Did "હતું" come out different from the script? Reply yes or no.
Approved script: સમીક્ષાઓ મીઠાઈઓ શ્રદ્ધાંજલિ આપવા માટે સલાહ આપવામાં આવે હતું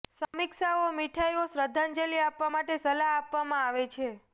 yes